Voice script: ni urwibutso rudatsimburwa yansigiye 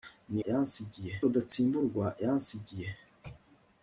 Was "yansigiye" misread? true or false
false